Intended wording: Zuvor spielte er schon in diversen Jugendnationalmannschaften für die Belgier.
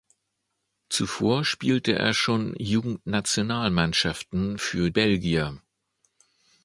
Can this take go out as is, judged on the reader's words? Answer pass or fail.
fail